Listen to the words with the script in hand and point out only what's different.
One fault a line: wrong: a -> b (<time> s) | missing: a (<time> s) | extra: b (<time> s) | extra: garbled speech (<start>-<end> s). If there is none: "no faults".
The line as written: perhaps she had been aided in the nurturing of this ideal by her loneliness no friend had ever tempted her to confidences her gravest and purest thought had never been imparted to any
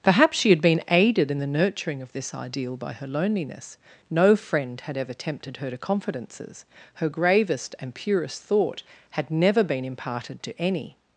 no faults